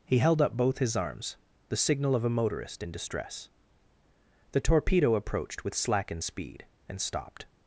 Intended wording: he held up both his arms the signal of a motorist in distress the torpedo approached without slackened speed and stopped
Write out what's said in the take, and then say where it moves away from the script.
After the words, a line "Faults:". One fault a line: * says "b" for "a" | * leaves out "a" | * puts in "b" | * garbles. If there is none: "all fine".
he held up both his arms the signal of a motorist in distress the torpedo approached with slackened speed and stopped
Faults:
* says "with" for "without"